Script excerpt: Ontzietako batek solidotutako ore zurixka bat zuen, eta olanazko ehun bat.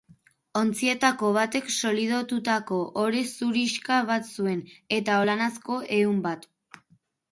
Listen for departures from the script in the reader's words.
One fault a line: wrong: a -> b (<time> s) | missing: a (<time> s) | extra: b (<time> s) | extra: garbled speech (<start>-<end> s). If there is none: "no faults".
no faults